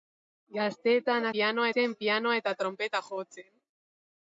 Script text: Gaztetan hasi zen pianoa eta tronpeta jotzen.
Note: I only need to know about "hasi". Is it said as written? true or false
false